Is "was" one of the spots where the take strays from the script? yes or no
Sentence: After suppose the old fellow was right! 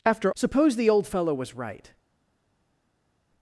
no